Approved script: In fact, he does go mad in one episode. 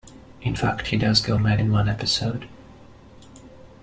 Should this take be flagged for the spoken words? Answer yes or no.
no